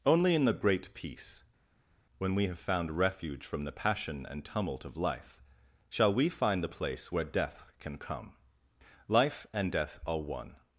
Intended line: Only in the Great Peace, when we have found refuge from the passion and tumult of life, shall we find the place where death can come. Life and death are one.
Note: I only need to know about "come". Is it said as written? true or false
true